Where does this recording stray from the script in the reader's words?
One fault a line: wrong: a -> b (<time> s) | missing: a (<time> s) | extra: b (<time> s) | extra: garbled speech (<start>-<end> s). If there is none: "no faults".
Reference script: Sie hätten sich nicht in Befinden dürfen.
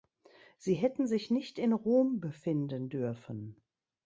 extra: Rom (1.7 s)